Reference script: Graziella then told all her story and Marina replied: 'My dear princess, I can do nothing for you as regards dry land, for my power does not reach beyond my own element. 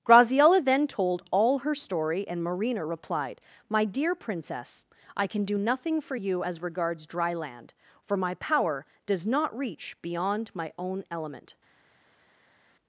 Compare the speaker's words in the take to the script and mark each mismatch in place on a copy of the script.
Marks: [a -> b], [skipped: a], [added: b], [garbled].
Graziella then told all her story and Marina replied: 'My dear princess, I can do nothing for you as regards dry land, for my power does not reach beyond my own element.